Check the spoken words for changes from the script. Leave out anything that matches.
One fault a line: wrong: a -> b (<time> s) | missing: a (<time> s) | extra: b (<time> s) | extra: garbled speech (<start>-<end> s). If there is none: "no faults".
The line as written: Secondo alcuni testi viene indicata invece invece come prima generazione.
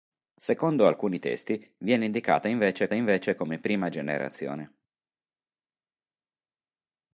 no faults